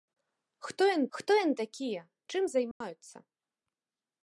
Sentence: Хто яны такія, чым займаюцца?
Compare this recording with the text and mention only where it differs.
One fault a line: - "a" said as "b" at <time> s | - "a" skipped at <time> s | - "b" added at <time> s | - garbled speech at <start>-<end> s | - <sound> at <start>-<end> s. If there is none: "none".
- "хто яны" added at 1.2 s
- dropout at 2.7-2.8 s